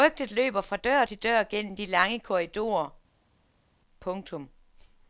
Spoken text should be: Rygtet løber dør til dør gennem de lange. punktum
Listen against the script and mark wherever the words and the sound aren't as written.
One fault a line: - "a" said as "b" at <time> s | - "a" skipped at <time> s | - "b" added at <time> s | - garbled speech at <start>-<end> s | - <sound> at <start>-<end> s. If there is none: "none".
- "fra" added at 0.6 s
- "korridorer" added at 2.2 s